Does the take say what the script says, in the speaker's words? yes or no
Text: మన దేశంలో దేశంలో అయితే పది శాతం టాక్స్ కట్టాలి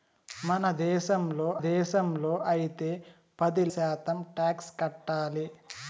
yes